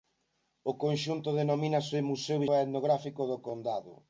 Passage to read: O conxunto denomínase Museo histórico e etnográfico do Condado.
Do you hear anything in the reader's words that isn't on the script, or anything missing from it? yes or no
yes